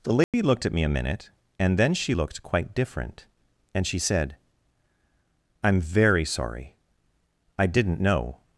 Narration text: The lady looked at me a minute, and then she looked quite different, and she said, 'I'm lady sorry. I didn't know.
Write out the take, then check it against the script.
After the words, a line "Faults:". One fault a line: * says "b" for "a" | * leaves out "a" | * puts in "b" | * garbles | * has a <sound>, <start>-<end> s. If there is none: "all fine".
The lady looked at me a minute, and then she looked quite different, and she said, 'I'm very sorry. I didn't know.
Faults:
* has a dropout, 0.2-0.3 s
* says "very" for "lady"